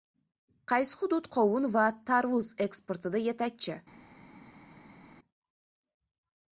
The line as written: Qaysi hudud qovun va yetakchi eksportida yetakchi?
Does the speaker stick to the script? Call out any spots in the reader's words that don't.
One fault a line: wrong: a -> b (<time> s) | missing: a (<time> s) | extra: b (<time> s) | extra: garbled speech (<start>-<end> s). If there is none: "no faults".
wrong: yetakchi -> tarvuz (2.1 s)